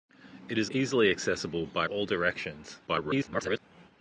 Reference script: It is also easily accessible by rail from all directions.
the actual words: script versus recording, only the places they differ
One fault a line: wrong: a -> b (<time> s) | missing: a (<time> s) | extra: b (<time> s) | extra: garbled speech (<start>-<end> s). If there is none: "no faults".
missing: also (0.7 s)
missing: rail from (1.8 s)
extra: garbled speech (2.9-3.6 s)